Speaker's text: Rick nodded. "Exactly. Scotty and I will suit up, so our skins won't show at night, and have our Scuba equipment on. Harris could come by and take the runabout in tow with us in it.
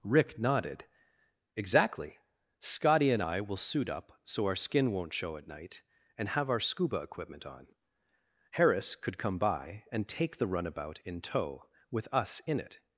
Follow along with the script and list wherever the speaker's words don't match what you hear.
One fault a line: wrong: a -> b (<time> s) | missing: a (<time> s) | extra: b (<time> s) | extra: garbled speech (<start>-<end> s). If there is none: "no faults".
wrong: skins -> skin (4.5 s)